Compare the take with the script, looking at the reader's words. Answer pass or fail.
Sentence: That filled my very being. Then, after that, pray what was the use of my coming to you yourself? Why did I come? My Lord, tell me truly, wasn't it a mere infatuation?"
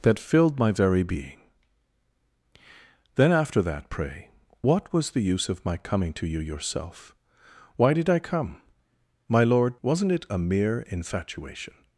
fail